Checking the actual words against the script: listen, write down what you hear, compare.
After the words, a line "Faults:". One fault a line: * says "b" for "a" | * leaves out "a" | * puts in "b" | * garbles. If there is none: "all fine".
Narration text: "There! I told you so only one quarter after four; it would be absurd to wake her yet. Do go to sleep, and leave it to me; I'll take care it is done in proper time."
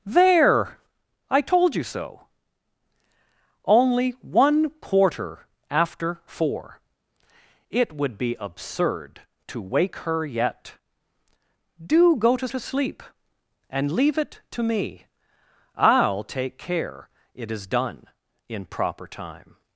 "There! I told you so only one quarter after four; it would be absurd to wake her yet. Do go to to sleep, and leave it to me; I'll take care it is done in proper time."
Faults:
* puts in "to"